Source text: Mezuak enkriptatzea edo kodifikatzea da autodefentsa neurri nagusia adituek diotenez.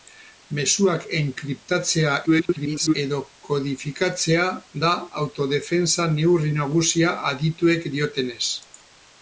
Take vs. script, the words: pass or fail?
fail